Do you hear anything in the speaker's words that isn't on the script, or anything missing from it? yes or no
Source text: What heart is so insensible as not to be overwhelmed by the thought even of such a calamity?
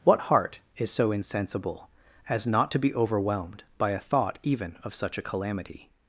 yes